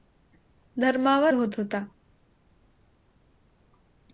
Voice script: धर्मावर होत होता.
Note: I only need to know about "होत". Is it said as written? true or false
true